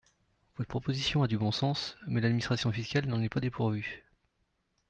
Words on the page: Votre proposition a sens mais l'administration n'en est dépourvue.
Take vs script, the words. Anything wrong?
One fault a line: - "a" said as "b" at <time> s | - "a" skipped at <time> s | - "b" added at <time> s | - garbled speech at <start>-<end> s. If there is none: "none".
- "du bon" added at 1.3 s
- "fiscale" added at 2.7 s
- "pas" added at 3.3 s